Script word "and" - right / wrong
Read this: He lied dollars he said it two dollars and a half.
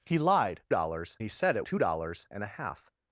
right